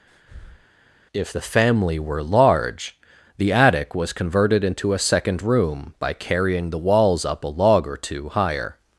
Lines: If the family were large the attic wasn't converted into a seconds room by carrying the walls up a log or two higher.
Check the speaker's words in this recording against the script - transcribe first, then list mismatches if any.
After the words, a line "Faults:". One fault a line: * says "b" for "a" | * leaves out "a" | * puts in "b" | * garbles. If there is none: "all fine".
If the family were large the attic was converted into a second room by carrying the walls up a log or two higher.
Faults:
* says "was" for "wasn't"
* says "second" for "seconds"